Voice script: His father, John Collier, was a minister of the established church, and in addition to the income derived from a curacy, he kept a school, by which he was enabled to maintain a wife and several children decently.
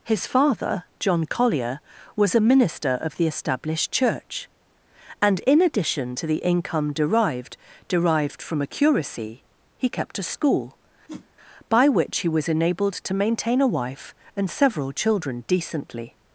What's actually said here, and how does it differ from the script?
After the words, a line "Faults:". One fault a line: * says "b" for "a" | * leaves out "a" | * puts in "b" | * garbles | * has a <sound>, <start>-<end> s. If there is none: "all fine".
His father, John Collier, was a minister of the established church, and in addition to the income derived derived from a curacy, he kept a school, by which he was enabled to maintain a wife and several children decently.
Faults:
* puts in "derived"
* has a whoosh, 11.1-11.3 s